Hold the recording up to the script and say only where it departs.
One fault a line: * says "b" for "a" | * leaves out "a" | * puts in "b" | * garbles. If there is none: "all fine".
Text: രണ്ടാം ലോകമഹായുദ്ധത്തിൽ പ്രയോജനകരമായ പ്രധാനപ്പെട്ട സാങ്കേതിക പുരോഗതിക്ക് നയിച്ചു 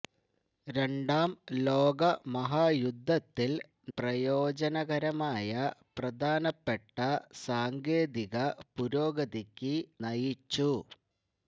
all fine